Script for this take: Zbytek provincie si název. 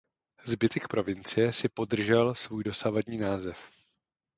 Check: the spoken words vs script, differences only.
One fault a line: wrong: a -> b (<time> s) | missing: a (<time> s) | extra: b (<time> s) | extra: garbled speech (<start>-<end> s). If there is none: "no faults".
extra: podržel svůj dosavadní (1.7 s)